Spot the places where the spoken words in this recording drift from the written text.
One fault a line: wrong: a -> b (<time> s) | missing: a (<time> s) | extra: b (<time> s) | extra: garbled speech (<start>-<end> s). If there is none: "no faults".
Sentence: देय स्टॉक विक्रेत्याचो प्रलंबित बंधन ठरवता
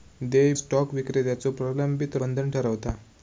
no faults